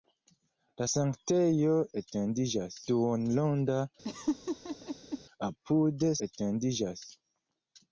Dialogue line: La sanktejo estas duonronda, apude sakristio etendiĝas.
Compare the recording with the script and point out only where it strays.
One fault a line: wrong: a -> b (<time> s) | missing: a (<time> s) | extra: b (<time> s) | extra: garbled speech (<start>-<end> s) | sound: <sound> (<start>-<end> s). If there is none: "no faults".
wrong: estas -> etendiĝas (2.0 s)
sound: laugh (4.0-5.2 s)
missing: sakristio (6.1 s)